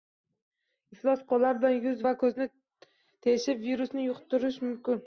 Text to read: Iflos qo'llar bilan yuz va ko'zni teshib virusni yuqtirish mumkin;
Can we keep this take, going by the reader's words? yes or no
yes